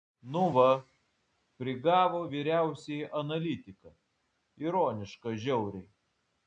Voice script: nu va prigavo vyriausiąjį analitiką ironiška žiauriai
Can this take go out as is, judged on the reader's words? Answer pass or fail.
pass